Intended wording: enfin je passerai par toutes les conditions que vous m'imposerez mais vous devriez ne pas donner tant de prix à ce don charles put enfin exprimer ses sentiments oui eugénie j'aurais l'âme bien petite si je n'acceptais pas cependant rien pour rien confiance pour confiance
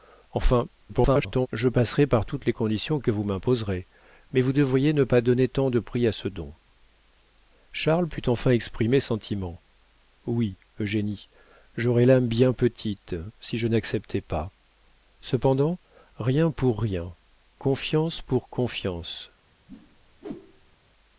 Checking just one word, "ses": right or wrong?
wrong